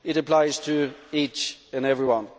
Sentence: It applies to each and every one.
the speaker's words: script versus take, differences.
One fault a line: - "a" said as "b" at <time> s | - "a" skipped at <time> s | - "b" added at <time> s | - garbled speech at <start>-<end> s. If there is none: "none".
none